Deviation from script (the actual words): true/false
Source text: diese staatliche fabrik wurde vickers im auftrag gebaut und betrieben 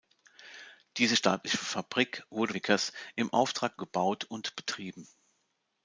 false